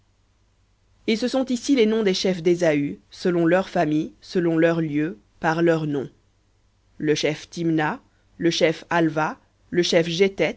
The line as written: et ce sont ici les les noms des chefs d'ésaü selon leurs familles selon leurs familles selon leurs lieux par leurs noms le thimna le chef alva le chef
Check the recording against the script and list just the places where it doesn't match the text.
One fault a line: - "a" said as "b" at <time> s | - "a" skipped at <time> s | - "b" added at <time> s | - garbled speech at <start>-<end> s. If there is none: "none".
- "les" skipped at 1.8 s
- "familles selon leurs" skipped at 4.8 s
- "chef" added at 7.1 s